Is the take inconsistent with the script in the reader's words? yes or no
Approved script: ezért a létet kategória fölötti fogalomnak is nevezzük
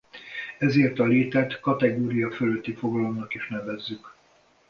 no